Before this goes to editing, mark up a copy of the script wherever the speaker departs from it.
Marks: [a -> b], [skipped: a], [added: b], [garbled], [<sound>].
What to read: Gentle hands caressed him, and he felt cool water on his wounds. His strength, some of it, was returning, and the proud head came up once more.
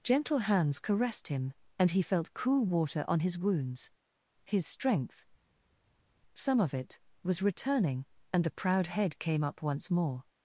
Gentle hands caressed him, and he felt cool water on his wounds. His strength, some of it, was returning, and the proud head came up once more.